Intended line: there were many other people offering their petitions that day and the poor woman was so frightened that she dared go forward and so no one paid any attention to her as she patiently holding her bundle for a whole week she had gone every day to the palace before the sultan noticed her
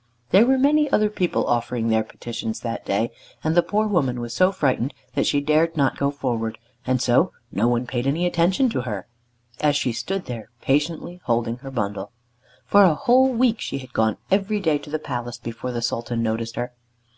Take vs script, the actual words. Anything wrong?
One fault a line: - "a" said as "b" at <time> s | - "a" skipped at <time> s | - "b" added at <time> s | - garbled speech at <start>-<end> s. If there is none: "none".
- "not" added at 5.8 s
- "stood there" added at 9.9 s